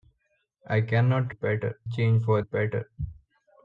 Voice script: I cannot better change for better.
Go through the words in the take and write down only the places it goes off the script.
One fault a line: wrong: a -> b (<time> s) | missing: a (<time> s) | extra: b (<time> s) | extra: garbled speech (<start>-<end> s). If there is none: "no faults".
no faults